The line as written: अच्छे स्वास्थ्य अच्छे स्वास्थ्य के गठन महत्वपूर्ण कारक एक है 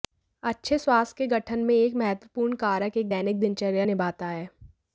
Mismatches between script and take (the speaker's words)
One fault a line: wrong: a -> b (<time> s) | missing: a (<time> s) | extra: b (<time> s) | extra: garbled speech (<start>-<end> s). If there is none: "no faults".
wrong: अच्छे स्वास्थ्य के गठन -> के गठन में एक (1.2 s)
extra: दैनिक दिनचर्या निभाता (3.1 s)